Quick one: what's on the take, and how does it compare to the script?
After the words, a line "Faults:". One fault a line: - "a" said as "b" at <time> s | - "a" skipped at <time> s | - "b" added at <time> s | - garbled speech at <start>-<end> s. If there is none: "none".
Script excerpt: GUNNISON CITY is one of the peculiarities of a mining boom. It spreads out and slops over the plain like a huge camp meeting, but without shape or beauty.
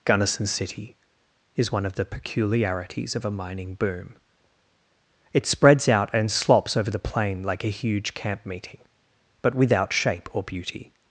GUNNISON CITY is one of the peculiarities of a mining boom. It spreads out and slops over the plain like a huge camp meeting, but without shape or beauty.
Faults:
none